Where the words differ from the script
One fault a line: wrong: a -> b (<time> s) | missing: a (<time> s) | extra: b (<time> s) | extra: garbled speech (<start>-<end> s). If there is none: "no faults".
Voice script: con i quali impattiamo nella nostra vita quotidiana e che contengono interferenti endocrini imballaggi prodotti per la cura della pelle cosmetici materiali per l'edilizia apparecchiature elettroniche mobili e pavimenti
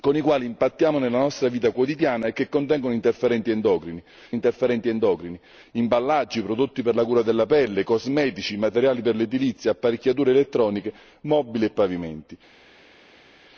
extra: interferenti endocrini (4.3 s)